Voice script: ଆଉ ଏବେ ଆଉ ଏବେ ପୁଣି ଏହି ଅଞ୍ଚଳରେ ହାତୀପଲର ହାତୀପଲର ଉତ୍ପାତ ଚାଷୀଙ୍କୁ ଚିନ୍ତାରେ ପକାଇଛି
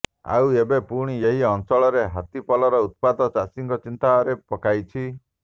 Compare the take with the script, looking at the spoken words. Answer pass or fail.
fail